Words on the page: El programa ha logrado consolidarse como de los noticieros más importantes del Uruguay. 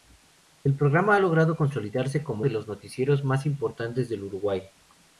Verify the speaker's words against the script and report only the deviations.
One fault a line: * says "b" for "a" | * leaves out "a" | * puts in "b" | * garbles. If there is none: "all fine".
all fine